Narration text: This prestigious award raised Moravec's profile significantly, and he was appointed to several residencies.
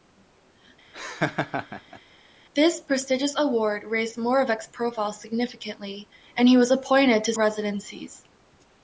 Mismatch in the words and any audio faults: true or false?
true